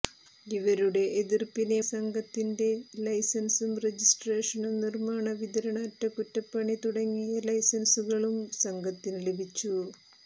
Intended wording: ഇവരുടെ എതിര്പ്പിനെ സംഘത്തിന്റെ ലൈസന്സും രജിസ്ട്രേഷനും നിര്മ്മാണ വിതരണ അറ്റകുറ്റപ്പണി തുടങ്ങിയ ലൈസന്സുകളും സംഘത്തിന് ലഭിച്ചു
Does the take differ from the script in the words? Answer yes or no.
no